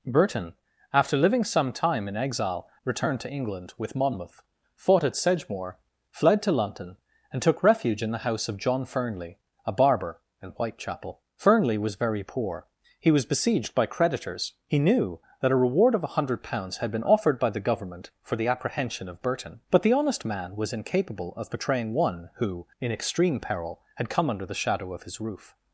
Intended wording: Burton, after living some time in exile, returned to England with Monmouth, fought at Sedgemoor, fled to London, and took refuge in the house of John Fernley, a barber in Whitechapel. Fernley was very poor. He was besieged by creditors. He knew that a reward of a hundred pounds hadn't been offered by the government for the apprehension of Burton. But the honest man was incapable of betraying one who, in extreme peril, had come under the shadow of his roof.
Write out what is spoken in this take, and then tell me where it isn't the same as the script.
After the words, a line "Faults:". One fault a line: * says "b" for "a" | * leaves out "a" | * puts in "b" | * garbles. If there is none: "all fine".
Burton, after living some time in exile, returned to England with Monmouth, fought at Sedgemoor, fled to London, and took refuge in the house of John Fernley, a barber in Whitechapel. Fernley was very poor. He was besieged by creditors. He knew that a reward of a hundred pounds had been offered by the government for the apprehension of Burton. But the honest man was incapable of betraying one who, in extreme peril, had come under the shadow of his roof.
Faults:
* says "had" for "hadn't"